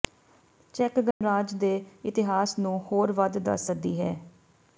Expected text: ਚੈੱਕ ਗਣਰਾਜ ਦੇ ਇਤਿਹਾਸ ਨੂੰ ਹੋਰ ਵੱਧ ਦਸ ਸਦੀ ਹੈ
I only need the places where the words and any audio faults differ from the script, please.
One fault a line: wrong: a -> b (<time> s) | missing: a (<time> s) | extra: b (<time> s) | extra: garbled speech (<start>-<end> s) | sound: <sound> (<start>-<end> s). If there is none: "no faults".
sound: dropout (1.1-1.2 s)